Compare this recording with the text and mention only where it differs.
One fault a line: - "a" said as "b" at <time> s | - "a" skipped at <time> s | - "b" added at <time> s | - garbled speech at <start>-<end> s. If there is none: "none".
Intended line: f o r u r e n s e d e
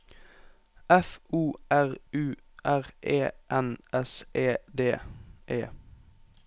none